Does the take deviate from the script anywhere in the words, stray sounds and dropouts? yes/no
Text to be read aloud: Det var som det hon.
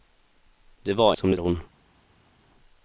no